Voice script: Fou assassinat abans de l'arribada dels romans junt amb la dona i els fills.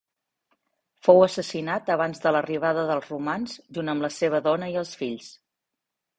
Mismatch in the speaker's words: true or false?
true